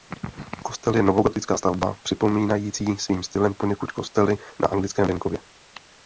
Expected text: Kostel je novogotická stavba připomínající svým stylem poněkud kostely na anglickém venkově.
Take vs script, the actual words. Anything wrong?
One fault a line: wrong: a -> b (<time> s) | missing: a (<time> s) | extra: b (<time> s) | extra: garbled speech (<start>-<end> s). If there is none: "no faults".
no faults